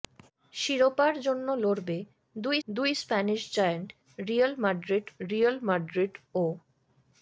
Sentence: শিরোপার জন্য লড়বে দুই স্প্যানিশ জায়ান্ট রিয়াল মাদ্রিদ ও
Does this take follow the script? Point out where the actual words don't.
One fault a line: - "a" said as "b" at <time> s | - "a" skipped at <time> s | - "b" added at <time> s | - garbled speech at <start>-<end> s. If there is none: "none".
- "দুই" added at 2.7 s
- "রিয়াল মাদ্রিদ" added at 5.2 s